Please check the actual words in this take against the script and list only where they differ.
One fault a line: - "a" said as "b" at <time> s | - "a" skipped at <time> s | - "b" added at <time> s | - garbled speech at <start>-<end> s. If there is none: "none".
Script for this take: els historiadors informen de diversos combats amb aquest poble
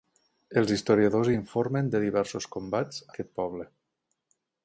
- "amb" skipped at 3.1 s